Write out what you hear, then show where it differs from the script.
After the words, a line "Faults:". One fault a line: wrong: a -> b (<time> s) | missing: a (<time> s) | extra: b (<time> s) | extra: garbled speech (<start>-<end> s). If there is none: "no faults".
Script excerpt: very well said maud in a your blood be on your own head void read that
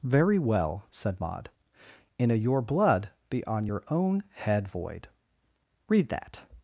very well said maud in a your blood be on your own head void read that
Faults:
no faults